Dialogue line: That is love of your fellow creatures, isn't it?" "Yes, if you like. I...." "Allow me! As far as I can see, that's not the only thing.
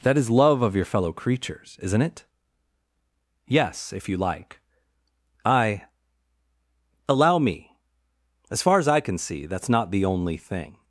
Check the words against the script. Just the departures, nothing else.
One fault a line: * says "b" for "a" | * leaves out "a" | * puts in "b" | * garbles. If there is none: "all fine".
all fine